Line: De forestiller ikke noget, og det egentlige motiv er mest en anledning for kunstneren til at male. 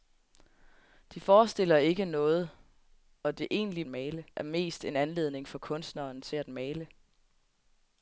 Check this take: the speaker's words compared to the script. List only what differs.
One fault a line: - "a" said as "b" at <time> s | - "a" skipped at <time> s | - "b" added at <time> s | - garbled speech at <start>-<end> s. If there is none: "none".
- "motiv" said as "male" at 3.8 s